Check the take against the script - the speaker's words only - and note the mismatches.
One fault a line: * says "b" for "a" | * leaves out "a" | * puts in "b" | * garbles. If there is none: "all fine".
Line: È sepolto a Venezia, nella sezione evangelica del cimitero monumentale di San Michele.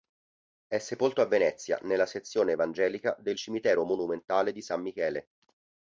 all fine